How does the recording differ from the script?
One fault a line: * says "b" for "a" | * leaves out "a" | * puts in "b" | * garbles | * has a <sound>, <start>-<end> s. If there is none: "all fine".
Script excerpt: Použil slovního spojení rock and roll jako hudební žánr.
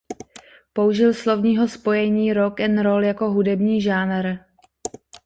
all fine